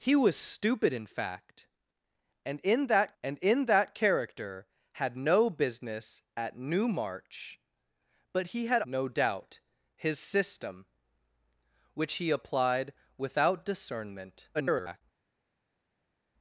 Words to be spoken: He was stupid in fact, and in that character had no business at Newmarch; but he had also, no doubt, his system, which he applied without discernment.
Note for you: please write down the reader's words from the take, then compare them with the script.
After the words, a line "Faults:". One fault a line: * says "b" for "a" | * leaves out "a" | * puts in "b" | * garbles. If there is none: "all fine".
He was stupid in fact, and in that and in that character had no business at Newmarch; but he had no doubt, his system, which he applied without discernment. [garbled]
Faults:
* puts in "and in that"
* leaves out "also"
* garbles